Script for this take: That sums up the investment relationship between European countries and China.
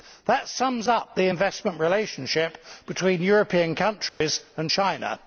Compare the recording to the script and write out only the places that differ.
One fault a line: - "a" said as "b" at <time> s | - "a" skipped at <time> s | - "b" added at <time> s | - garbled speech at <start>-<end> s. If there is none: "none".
none